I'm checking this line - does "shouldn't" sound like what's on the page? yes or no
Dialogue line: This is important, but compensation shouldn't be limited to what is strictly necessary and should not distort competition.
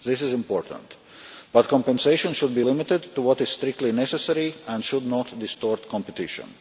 no